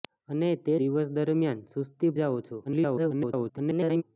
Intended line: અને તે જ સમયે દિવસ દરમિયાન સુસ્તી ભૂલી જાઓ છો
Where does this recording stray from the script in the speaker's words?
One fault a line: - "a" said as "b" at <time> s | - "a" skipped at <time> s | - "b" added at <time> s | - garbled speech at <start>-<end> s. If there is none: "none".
- "જ સમયે" skipped at 0.7 s
- "ભૂલી" skipped at 2.1 s
- garbled speech at 2.6-4.0 s